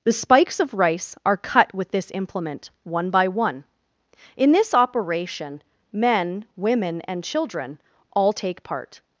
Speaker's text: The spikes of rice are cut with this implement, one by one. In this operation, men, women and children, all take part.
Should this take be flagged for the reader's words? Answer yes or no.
no